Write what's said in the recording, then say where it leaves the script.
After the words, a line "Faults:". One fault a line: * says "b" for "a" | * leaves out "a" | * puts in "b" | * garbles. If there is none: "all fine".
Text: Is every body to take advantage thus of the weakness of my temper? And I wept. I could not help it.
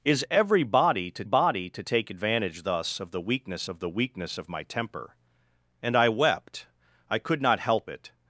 Is every body to body to take advantage thus of the weakness of the weakness of my temper? And I wept. I could not help it.
Faults:
* puts in "body to"
* puts in "the weakness of"